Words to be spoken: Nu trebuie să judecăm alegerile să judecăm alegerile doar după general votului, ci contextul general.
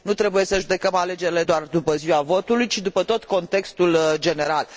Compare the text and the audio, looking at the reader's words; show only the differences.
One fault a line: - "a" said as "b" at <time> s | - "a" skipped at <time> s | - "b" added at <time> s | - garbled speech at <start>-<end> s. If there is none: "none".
- "să judecăm alegerile" skipped at 1.4 s
- "general" said as "ziua" at 1.9 s
- "după tot" added at 2.8 s